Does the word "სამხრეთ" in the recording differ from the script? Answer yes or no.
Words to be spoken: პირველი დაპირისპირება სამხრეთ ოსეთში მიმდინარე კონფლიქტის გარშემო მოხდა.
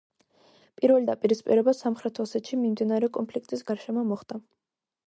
no